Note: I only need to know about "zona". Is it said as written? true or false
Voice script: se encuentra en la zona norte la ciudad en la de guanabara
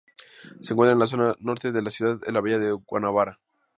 true